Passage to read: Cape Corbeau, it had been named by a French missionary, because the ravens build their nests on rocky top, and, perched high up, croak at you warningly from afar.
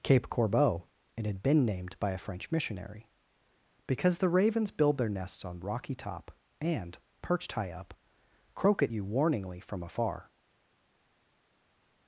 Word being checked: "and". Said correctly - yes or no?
yes